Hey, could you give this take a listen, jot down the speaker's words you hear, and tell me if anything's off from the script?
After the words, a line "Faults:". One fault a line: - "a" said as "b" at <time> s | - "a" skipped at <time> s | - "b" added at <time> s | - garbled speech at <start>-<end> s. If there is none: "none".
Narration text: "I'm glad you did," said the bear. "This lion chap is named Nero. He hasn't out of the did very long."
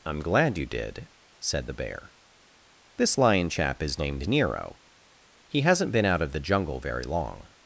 "I'm glad you did," said the bear. "This lion chap is named Nero. He hasn't been out of the jungle very long."
Faults:
- "been" added at 5.9 s
- "did" said as "jungle" at 6.4 s